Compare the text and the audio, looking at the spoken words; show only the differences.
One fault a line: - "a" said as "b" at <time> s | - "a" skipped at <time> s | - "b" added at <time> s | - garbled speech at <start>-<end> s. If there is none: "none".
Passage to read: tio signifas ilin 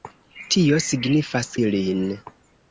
none